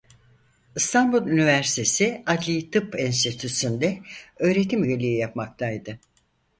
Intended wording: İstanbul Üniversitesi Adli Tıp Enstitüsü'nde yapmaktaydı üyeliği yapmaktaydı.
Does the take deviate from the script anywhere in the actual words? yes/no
yes